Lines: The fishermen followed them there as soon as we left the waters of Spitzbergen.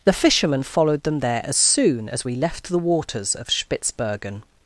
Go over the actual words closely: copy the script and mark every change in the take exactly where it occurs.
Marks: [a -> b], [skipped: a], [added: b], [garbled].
The fishermen followed them there as soon as we left the waters of Spitzbergen.